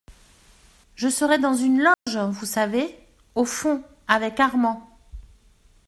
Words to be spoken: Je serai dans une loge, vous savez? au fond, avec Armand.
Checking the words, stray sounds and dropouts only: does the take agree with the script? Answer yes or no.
no